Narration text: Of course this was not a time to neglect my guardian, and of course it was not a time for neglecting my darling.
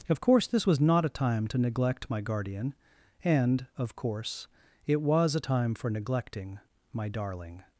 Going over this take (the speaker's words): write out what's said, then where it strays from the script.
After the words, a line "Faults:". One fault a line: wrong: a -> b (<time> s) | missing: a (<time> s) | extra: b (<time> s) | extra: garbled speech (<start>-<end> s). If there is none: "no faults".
Of course this was not a time to neglect my guardian, and of course it was a time for neglecting my darling.
Faults:
missing: not (5.3 s)